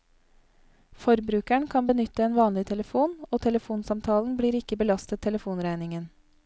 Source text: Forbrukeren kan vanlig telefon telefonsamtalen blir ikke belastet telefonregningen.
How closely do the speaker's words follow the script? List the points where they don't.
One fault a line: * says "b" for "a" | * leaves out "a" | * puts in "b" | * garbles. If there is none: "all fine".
* puts in "benytte en"
* puts in "og"